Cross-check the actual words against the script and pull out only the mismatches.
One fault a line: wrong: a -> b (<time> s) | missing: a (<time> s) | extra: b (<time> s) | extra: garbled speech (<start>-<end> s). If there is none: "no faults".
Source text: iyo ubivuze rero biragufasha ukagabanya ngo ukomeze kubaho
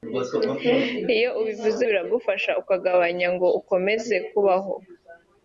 missing: rero (1.8 s)